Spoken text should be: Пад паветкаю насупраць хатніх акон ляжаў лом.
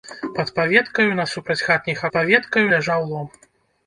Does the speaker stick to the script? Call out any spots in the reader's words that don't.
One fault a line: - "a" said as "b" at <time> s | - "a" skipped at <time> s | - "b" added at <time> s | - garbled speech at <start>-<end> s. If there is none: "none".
- "акон" said as "паветкаю" at 2.1 s